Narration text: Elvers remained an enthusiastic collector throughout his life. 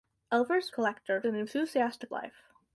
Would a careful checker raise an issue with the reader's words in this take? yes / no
yes